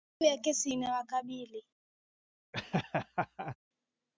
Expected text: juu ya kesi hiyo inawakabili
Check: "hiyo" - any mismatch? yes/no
yes